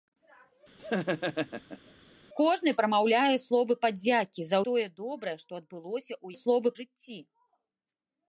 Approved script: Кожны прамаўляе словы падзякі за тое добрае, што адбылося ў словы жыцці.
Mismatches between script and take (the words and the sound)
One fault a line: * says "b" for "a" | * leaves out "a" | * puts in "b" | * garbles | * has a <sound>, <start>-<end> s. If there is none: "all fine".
* has a laugh, 0.8-1.9 s